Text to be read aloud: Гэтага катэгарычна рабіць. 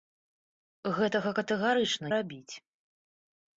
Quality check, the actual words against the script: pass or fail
pass